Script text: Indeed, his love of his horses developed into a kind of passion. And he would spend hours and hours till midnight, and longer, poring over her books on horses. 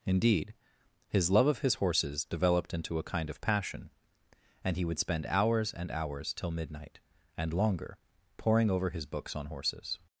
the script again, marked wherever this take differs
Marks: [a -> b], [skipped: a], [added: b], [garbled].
Indeed, his love of his horses developed into a kind of passion. And he would spend hours and hours till midnight, and longer, poring over [her -> his] books on horses.